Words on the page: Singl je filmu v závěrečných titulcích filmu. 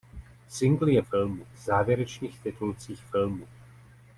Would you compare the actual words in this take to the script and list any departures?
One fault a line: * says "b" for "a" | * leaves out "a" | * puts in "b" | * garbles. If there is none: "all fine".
all fine